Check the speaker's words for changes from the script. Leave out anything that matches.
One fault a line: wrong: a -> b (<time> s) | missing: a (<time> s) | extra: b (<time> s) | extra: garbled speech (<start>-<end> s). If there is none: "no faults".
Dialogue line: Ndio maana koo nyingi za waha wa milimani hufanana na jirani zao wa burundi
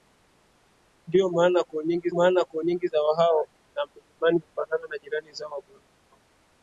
extra: maana koo nyingi (2.1 s)